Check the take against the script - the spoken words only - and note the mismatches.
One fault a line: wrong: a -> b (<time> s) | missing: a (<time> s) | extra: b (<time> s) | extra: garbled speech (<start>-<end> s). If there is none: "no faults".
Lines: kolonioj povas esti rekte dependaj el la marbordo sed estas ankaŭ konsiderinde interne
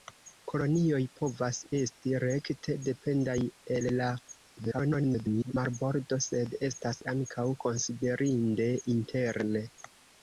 extra: garbled speech (4.6-5.5 s)